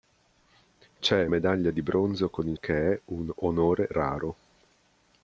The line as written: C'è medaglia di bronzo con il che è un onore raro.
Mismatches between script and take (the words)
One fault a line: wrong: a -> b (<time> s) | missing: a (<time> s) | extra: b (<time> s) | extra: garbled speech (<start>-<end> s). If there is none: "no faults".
no faults